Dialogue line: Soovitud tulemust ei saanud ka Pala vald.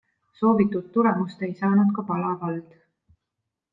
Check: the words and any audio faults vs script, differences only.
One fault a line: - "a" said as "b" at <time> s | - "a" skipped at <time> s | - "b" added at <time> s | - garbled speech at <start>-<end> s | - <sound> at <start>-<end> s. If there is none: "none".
none